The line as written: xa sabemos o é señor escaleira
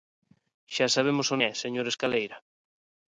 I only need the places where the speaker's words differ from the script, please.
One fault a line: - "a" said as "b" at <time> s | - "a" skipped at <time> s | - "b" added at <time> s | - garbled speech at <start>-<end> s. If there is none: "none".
none